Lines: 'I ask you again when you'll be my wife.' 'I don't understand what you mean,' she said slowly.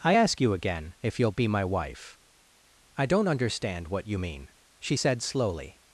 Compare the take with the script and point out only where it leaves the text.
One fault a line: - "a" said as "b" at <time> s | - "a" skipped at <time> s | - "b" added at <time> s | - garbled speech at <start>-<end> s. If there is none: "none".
- "when" said as "if" at 1.0 s